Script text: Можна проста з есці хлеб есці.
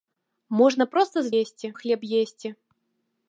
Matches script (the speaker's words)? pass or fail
pass